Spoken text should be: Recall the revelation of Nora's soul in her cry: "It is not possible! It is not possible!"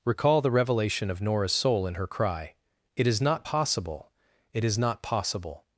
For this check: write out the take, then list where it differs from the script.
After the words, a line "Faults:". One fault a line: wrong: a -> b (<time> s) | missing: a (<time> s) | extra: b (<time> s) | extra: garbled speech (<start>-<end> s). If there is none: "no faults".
Recall the revelation of Nora's soul in her cry: "It is not possible! It is not possible!"
Faults:
no faults